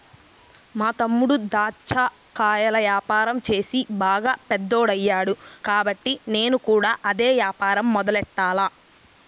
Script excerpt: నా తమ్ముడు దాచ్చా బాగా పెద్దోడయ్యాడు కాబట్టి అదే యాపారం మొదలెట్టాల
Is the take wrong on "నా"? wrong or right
wrong